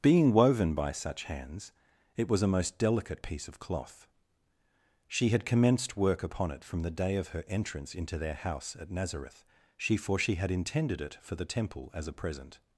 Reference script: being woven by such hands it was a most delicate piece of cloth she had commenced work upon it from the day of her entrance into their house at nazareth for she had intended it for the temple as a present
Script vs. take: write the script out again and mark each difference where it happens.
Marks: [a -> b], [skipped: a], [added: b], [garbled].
being woven by such hands it was a most delicate piece of cloth she had commenced work upon it from the day of her entrance into their house at nazareth [added: she] for she had intended it for the temple as a present